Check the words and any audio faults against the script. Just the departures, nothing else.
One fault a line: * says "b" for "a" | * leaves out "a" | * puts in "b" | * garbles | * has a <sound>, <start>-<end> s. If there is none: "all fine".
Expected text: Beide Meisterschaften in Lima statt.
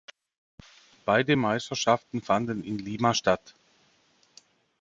* puts in "fanden"